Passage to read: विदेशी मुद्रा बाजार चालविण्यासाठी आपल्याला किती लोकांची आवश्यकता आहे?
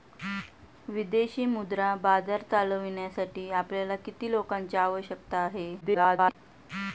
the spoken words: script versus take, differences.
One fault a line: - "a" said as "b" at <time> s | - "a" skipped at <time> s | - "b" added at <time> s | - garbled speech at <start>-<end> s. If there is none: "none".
- garbled speech at 5.8-6.3 s